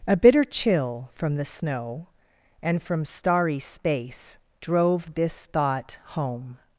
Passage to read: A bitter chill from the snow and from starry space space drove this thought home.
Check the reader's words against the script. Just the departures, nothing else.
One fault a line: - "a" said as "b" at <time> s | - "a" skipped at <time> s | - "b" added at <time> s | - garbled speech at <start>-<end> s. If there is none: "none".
- "space" skipped at 4.4 s